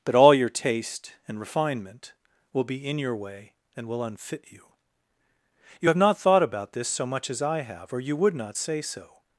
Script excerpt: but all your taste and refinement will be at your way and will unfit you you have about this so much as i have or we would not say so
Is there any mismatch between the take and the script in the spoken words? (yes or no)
yes